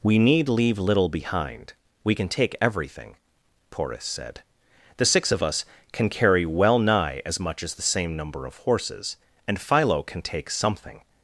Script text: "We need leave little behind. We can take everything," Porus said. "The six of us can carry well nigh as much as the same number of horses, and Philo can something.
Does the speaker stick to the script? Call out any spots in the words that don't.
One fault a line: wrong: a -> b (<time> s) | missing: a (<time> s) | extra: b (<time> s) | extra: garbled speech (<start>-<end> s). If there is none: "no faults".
extra: take (10.2 s)